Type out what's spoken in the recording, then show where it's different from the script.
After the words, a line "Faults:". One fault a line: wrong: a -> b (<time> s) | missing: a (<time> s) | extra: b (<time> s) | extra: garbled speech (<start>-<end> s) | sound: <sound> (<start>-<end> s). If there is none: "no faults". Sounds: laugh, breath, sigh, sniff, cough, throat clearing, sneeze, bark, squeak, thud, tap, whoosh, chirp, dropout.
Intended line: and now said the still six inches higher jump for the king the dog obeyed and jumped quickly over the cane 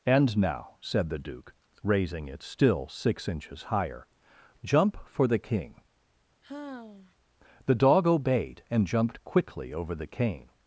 and now said the duke raising it still six inches higher jump for the king the dog obeyed and jumped quickly over the cane
Faults:
extra: duke raising it (1.2 s)
sound: sigh (6.4-7.2 s)